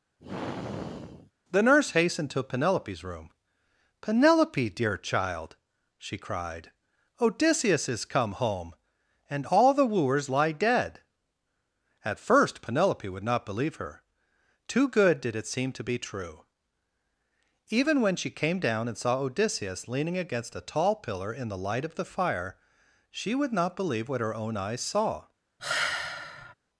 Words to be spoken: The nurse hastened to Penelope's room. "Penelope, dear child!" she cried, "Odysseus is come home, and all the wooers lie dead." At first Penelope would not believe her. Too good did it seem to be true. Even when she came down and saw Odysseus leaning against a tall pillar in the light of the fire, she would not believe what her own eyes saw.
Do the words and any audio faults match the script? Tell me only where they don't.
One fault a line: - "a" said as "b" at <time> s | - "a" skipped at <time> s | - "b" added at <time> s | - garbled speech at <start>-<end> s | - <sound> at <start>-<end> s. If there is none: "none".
- sigh at 0.2-1.3 s
- sigh at 25.6-26.5 s